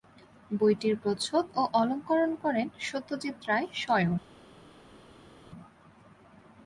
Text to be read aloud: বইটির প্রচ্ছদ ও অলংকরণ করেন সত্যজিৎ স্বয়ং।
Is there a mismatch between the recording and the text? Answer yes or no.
yes